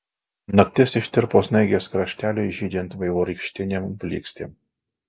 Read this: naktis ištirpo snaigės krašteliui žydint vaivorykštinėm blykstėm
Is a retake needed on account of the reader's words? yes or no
no